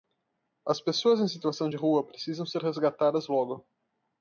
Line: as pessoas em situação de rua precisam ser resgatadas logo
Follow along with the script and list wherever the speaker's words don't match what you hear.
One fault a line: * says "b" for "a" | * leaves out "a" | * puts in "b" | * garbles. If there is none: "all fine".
all fine